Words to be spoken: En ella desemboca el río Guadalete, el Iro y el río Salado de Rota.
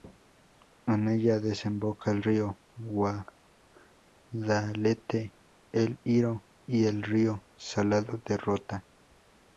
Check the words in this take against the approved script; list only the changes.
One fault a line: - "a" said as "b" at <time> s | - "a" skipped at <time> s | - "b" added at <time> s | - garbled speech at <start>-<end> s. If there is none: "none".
none